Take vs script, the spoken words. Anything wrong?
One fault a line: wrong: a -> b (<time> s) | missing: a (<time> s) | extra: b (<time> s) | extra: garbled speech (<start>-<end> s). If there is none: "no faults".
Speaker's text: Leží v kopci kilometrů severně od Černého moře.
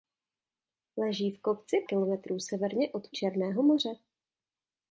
no faults